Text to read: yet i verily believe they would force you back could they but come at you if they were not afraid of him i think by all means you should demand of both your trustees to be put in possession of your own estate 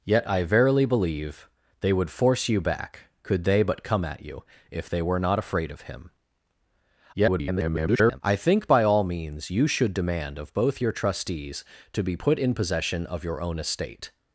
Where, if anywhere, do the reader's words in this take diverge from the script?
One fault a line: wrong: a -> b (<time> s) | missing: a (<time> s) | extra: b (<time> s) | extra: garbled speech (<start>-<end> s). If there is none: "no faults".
extra: garbled speech (7.1-8.2 s)